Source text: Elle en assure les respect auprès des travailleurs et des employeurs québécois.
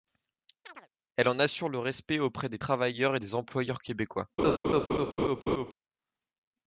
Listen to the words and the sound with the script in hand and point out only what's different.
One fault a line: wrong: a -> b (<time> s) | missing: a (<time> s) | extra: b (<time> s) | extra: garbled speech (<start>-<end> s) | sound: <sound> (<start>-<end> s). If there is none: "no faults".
sound: chirp (0.6-0.9 s)
wrong: les -> le (1.7 s)
sound: laugh (4.4-5.7 s)